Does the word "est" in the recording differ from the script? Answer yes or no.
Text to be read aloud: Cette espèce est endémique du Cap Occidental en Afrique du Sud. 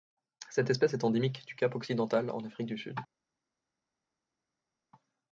no